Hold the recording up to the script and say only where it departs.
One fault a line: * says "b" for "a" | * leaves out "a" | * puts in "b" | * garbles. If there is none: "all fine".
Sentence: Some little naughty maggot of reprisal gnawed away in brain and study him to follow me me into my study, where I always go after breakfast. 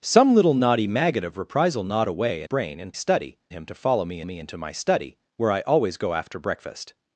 all fine